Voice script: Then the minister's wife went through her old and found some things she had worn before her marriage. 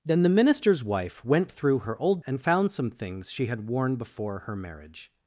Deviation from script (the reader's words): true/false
false